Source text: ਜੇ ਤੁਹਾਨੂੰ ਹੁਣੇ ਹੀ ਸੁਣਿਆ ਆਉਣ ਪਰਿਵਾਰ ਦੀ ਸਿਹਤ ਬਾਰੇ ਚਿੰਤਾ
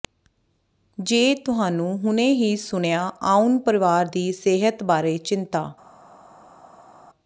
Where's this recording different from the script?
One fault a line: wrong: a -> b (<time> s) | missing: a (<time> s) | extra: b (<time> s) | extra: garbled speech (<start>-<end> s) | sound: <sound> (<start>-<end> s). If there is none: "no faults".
no faults